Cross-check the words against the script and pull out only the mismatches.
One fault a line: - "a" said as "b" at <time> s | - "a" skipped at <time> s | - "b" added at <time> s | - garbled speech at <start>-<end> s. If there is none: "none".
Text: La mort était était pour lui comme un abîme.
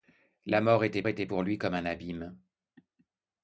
none